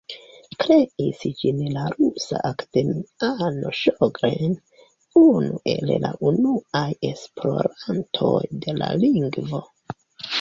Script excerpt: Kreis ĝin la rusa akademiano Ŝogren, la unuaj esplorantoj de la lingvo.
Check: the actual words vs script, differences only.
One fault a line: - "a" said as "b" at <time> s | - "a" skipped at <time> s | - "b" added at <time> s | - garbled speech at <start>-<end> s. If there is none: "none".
- "unu el" added at 5.2 s